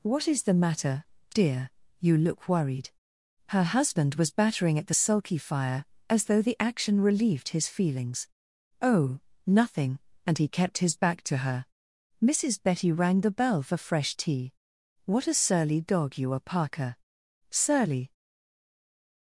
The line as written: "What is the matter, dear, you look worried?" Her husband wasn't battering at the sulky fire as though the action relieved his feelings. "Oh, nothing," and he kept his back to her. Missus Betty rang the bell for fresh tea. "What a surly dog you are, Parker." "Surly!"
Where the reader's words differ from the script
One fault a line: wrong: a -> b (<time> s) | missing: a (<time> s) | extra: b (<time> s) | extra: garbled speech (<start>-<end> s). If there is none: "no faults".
wrong: wasn't -> was (4.2 s)